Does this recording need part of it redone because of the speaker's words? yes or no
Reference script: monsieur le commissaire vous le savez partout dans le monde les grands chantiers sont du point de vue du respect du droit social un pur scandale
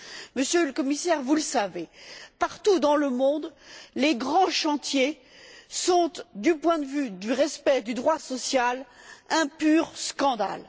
no